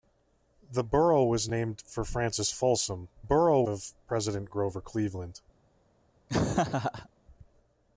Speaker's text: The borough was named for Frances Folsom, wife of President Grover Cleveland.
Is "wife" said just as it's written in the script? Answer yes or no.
no